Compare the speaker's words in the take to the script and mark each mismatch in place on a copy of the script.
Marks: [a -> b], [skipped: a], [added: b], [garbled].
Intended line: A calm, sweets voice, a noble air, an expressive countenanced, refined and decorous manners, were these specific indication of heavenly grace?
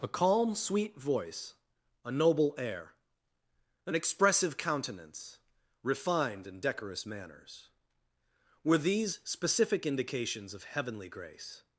A calm, [sweets -> sweet] voice, a noble air, an expressive [countenanced, -> countenance] refined and decorous manners, were these specific [indication -> indications] of heavenly grace?